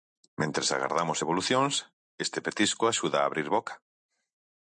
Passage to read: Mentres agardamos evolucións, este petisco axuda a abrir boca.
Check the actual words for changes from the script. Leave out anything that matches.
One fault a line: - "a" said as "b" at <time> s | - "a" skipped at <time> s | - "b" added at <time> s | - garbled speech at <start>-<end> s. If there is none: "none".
none